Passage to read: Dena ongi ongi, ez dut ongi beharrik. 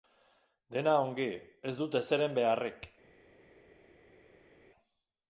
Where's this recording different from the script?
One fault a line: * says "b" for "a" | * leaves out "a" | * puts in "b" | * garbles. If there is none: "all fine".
* leaves out "ongi"
* says "ezeren" for "ongi"